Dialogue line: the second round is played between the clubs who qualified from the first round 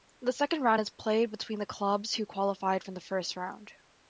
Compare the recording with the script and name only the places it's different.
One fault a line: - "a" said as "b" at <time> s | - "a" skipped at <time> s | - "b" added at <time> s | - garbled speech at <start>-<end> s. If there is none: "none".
none